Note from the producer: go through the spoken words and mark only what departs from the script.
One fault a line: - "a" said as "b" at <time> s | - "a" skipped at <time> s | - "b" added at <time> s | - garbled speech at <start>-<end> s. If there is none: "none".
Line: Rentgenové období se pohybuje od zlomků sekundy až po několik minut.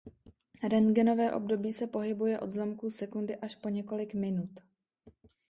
none